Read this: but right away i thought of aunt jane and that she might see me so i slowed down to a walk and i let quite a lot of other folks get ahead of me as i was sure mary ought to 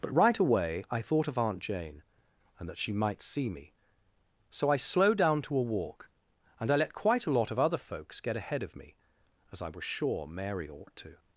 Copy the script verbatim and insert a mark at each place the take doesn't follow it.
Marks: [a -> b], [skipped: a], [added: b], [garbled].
but right away i thought of aunt jane and that she might see me so i slowed down to a walk and i let quite a lot of other folks get ahead of me as i was sure mary ought to